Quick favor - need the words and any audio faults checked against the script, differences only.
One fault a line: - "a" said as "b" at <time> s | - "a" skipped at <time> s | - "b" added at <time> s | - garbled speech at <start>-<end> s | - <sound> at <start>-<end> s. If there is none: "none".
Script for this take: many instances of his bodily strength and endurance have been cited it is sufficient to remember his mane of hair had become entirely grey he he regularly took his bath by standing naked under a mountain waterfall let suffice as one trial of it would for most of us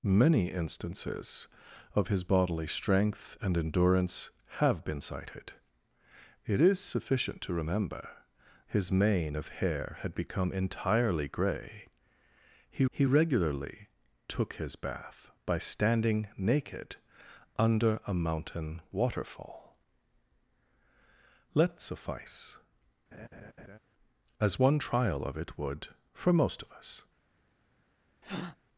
- laugh at 23.1-23.8 s
- breath at 28.2-28.6 s